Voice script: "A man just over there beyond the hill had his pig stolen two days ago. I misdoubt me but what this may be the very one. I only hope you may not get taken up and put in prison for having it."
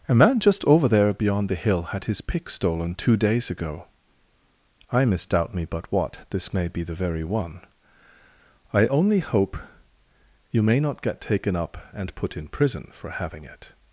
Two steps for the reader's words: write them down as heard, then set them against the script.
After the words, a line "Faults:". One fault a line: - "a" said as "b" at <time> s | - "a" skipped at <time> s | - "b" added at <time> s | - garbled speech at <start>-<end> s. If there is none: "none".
"A man just over there beyond the hill had his pick stolen two days ago. I misdoubt me but what this may be the very one. I only hope you may not get taken up and put in prison for having it."
Faults:
- "pig" said as "pick" at 2.2 s